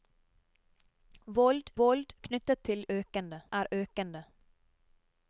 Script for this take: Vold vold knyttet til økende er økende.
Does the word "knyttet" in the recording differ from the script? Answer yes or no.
no